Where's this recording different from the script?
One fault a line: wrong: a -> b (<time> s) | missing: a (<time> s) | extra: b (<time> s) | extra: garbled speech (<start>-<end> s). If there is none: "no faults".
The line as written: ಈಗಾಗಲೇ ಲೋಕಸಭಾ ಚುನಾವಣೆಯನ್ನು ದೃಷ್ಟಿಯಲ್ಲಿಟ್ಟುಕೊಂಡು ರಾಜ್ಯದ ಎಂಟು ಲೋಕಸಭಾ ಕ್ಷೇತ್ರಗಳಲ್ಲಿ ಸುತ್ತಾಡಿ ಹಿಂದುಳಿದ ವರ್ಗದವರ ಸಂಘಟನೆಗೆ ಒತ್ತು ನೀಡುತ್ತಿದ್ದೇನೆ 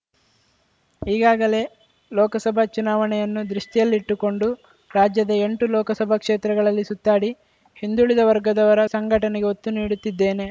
no faults